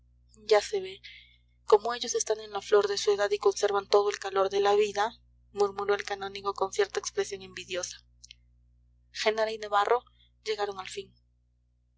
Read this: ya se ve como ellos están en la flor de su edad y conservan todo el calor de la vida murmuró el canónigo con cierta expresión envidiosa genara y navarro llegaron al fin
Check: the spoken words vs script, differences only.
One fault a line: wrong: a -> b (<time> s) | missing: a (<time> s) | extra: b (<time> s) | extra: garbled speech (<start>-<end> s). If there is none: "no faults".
no faults